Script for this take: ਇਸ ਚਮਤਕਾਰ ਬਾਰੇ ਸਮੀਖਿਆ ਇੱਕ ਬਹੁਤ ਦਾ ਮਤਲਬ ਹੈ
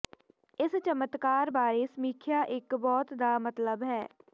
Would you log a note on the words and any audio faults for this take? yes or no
no